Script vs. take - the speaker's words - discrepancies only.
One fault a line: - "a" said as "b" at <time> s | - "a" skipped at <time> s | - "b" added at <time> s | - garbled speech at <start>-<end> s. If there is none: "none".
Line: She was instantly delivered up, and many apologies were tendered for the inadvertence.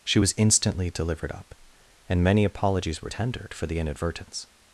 none